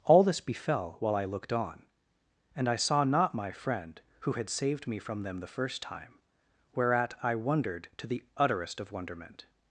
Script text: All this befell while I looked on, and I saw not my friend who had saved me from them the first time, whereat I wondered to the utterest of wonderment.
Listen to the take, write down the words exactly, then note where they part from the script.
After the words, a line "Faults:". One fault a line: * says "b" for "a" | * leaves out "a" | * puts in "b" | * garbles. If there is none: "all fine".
All this befell while I looked on, and I saw not my friend who had saved me from them the first time, whereat I wondered to the utterest of wonderment.
Faults:
all fine